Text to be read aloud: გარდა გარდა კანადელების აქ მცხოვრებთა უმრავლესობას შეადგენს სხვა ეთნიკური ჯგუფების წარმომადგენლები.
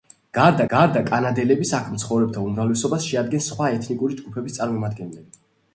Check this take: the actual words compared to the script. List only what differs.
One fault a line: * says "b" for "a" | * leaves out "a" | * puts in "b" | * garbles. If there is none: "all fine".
all fine